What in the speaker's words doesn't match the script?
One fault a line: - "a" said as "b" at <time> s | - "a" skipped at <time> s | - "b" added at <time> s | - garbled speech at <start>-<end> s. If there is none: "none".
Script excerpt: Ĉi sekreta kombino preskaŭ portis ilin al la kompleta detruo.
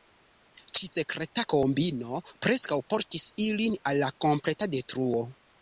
none